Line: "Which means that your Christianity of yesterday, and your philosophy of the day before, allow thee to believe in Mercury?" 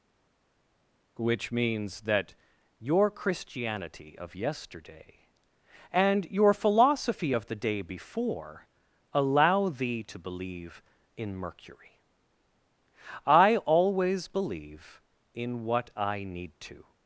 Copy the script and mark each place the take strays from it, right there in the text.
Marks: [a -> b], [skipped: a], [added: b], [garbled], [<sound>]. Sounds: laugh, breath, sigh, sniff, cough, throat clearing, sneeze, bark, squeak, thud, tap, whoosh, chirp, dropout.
"Which means that your Christianity of yesterday, and your philosophy of the day before, allow thee to believe in Mercury?" [added: I always believe in what I need to]